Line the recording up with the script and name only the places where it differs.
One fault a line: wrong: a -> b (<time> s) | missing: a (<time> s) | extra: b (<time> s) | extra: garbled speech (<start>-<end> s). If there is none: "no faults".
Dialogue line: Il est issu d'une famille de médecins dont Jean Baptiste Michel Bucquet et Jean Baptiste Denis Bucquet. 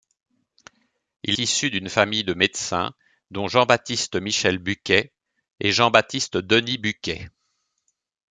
missing: est (1.4 s)